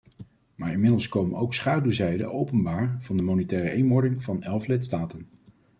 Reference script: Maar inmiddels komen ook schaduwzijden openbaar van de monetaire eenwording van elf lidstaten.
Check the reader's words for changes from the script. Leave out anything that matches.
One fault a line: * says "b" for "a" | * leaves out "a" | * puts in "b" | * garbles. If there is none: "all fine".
all fine